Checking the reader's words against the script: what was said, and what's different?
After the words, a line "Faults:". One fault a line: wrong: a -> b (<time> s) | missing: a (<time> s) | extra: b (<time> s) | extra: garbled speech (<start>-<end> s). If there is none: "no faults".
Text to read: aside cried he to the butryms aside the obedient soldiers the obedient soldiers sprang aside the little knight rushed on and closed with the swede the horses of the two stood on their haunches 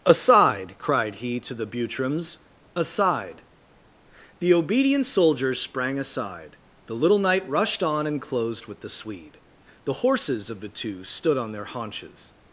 aside cried he to the butryms aside the obedient soldiers sprang aside the little knight rushed on and closed with the swede the horses of the two stood on their haunches
Faults:
missing: the obedient soldiers (5.6 s)